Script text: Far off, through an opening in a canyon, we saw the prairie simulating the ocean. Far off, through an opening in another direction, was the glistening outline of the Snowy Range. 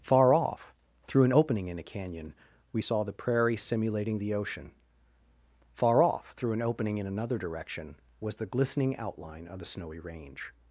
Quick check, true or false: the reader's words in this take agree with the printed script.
true